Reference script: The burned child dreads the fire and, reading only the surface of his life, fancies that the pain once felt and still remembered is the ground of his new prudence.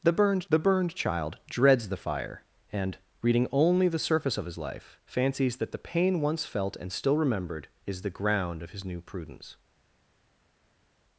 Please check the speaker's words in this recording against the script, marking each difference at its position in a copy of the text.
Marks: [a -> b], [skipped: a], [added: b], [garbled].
The burned [added: the burned] child dreads the fire and, reading only the surface of his life, fancies that the pain once felt and still remembered is the ground of his new prudence.